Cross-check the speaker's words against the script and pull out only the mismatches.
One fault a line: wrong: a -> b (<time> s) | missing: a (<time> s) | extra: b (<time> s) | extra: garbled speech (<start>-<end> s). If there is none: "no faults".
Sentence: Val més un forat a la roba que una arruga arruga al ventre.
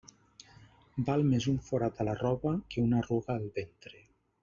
missing: arruga (3.4 s)